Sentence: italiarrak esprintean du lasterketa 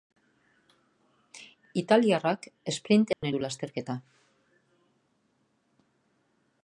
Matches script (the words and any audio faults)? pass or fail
fail